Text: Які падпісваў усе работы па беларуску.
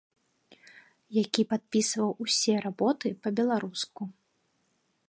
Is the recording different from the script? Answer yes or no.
no